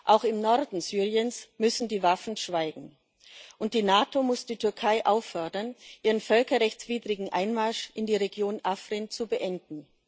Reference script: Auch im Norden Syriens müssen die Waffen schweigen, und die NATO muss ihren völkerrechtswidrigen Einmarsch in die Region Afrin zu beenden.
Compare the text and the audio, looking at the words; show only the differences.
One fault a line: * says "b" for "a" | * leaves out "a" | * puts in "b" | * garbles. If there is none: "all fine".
* puts in "die Türkei auffordern"